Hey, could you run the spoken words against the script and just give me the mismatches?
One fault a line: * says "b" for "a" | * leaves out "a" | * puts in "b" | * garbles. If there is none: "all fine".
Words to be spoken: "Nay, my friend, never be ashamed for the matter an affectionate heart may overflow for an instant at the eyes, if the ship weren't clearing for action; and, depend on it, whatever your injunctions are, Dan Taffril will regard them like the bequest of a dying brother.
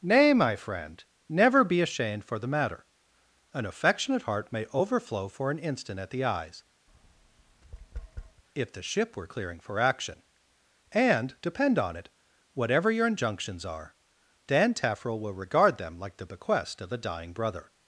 * says "were" for "weren't"